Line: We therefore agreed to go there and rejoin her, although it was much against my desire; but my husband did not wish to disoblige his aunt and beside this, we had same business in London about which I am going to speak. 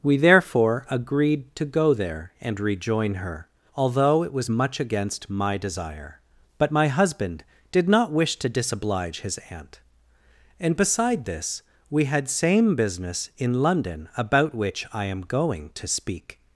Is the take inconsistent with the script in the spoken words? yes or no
no